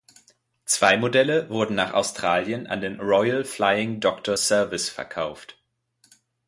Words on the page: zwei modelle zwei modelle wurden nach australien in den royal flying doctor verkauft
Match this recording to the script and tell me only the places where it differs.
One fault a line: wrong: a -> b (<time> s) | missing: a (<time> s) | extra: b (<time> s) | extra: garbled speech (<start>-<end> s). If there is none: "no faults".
missing: zwei modelle (1.5 s)
wrong: in -> an (2.6 s)
extra: service (4.4 s)